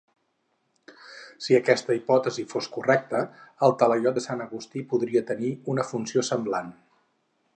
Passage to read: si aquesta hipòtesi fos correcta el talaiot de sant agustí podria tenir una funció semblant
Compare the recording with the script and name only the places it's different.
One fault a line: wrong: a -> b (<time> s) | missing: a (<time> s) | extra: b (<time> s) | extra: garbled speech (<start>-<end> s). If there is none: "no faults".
no faults